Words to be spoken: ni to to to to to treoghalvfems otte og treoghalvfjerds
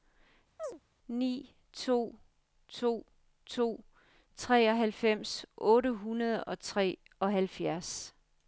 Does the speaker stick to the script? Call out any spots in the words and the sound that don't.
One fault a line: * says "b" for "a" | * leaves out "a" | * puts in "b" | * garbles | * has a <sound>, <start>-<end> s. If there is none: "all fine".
* has a chirp, 0.6-0.8 s
* leaves out "to to"
* puts in "hundrede"